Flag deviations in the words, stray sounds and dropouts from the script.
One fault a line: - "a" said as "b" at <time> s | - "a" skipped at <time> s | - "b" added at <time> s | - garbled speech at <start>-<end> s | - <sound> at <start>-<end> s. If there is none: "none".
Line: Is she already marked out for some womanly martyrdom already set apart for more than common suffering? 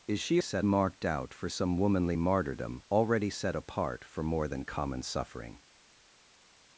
- "already" said as "set" at 0.4 s